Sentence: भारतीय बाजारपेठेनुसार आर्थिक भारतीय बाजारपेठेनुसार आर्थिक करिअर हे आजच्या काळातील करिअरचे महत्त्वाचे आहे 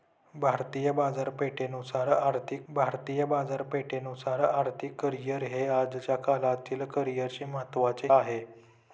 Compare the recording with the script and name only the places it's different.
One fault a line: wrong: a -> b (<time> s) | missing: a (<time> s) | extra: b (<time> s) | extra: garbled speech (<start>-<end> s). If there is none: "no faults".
no faults